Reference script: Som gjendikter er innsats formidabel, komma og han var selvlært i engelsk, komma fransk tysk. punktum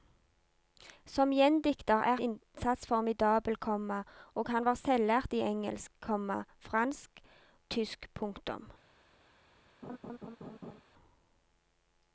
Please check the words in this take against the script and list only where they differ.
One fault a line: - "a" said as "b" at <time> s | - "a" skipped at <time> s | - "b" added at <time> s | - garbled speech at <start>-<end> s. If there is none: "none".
none